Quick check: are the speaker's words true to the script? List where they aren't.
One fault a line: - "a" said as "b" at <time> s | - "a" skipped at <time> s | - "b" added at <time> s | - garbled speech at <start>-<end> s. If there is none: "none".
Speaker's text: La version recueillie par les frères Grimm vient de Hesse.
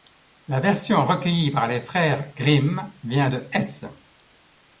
none